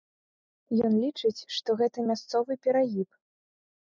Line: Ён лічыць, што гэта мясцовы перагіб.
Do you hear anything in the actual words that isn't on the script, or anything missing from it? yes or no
no